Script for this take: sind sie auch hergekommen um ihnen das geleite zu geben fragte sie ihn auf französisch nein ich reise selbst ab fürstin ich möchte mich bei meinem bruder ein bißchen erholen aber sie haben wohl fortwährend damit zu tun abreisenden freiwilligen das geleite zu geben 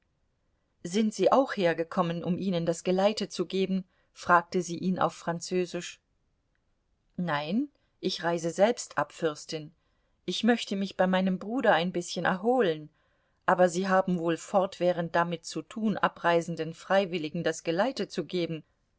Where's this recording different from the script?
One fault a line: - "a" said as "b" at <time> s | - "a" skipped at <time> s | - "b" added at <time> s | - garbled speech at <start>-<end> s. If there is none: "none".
none